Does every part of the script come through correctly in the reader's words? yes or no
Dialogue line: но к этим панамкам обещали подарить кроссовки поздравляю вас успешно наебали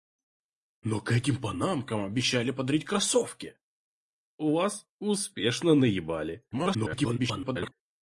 no